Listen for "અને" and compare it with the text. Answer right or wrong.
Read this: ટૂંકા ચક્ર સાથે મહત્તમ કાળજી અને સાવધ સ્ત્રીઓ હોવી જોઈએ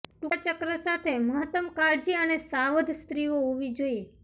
right